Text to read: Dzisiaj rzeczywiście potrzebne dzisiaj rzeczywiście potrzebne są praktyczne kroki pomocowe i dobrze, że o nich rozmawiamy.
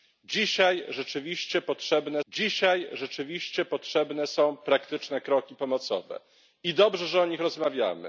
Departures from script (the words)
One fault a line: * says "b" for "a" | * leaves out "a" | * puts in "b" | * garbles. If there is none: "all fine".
all fine